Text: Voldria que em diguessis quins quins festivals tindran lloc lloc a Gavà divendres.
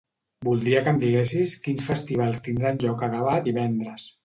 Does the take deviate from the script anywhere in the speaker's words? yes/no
yes